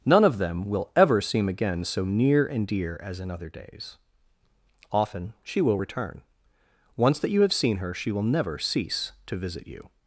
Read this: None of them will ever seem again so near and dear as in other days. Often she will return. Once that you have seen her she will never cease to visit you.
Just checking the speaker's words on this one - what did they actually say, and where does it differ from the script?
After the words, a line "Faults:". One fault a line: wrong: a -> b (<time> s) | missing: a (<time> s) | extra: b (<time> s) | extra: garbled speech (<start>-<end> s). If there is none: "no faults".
None of them will ever seem again so near and dear as in other days. Often she will return. Once that you have seen her she will never cease to visit you.
Faults:
no faults